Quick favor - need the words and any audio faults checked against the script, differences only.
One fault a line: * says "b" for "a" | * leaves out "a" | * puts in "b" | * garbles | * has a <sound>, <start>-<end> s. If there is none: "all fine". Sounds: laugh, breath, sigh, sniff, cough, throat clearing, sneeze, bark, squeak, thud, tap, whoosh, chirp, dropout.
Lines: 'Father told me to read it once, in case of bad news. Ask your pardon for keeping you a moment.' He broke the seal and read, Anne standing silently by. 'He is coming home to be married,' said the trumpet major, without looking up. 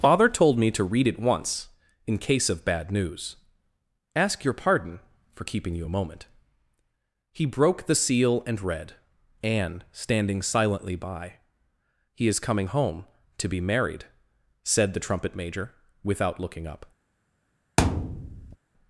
* has a thud, 17.8-18.6 s